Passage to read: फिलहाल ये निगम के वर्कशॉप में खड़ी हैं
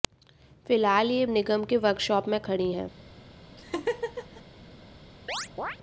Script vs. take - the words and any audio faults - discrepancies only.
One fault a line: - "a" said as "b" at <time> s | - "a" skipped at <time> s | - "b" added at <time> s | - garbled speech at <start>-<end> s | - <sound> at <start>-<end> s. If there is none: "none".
- laugh at 3.6-4.4 s
- chirp at 5.3-5.8 s